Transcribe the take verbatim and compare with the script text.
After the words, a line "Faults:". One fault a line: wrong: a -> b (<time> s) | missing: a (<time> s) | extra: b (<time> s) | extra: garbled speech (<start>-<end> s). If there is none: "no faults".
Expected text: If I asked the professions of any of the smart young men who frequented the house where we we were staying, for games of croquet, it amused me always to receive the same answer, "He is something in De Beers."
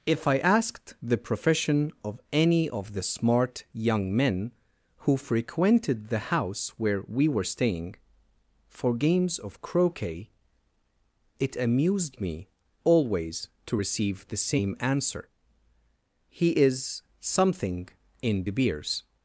If I asked the profession of any of the smart young men who frequented the house where we were staying, for games of croquet, it amused me always to receive the same answer, "He is something in De Beers."
Faults:
wrong: professions -> profession (1.2 s)
missing: we (7.3 s)